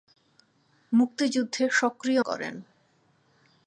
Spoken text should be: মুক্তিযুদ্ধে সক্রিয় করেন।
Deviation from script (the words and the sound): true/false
false